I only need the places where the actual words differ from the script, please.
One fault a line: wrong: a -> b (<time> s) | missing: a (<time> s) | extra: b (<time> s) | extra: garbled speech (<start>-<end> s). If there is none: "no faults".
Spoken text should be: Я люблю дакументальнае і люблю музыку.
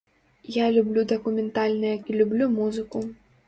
no faults